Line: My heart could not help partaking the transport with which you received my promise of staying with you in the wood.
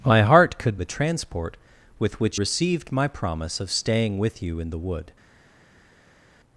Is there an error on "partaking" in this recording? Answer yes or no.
yes